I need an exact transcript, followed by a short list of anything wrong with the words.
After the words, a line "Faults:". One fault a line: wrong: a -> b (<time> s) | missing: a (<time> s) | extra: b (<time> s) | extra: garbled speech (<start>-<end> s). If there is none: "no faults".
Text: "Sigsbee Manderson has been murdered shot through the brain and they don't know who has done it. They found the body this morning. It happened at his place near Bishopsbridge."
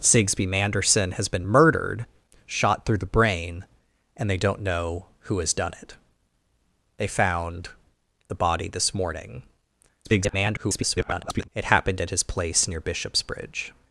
"Sigsbee Manderson has been murdered shot through the brain and they don't know who has done it. They found the body this morning. [garbled] It happened at his place near Bishopsbridge."
Faults:
extra: garbled speech (10.0-11.5 s)